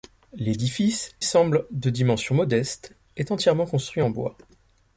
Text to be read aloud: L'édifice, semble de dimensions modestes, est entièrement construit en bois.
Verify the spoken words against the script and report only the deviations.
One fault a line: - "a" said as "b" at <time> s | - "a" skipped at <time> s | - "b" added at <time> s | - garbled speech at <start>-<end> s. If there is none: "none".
none